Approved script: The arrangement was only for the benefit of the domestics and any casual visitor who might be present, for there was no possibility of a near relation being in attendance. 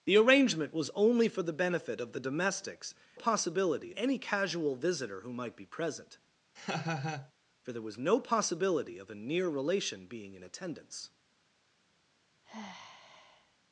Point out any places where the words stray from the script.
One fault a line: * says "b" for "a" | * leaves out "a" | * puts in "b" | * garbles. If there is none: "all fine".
* says "possibility" for "and"